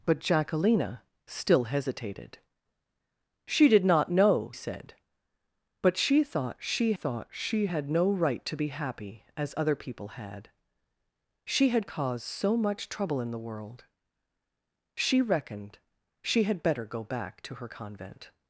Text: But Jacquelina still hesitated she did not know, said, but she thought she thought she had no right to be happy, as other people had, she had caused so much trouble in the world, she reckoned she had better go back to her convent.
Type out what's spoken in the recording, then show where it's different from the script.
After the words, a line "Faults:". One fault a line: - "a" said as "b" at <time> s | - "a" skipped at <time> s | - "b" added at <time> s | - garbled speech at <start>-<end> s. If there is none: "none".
But Jacquelina still hesitated she did not know, said, but she thought she thought she had no right to be happy, as other people had, she had caused so much trouble in the world, she reckoned she had better go back to her convent.
Faults:
none